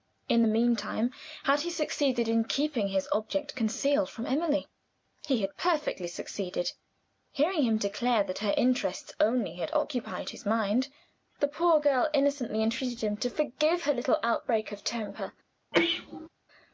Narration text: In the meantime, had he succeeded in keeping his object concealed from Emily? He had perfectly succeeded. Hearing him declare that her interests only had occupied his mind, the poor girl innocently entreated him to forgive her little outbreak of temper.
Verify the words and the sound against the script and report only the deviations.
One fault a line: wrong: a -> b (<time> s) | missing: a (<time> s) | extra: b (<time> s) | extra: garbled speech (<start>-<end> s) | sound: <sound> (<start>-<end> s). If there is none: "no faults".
sound: sneeze (15.7-16.3 s)